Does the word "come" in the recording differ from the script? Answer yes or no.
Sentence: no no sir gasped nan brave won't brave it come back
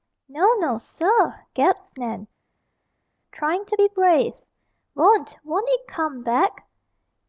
no